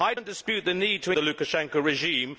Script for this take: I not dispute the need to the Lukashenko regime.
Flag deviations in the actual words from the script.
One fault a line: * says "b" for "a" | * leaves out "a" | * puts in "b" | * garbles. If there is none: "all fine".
all fine